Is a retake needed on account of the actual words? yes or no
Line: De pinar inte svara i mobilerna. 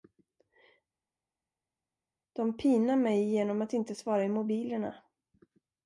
yes